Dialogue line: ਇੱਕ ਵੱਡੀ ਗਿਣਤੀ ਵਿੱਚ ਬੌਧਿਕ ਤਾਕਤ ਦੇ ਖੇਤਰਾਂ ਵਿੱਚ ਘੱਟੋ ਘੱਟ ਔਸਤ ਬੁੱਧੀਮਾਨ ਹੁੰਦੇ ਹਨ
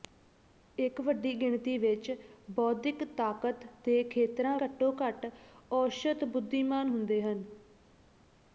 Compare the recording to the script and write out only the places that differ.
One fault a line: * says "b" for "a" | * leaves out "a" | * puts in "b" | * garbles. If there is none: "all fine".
* leaves out "ਵਿੱਚ"